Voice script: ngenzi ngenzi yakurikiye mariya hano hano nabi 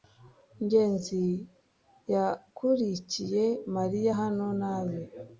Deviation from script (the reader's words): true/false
true